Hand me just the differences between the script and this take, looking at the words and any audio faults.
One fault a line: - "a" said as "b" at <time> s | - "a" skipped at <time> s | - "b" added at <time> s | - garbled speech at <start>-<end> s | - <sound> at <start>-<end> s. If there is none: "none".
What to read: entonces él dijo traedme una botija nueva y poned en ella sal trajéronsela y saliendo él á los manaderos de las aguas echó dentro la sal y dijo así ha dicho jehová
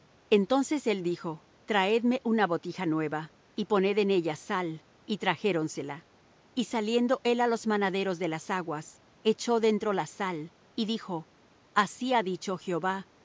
- "y" added at 5.0 s